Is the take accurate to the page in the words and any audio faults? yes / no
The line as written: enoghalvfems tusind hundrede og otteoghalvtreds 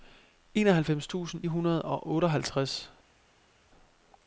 yes